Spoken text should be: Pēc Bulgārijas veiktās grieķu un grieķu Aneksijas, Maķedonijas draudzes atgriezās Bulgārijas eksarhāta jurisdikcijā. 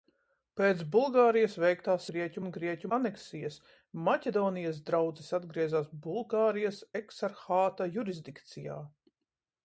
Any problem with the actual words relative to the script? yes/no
no